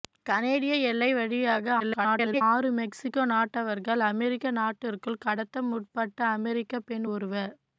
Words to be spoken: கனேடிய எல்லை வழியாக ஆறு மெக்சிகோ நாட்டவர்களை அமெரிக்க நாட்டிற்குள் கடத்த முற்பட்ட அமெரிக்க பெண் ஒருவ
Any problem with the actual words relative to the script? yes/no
yes